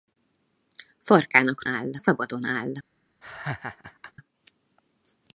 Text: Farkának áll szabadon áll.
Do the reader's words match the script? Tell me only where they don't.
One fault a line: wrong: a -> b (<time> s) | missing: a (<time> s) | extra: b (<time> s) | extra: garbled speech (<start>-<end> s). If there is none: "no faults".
no faults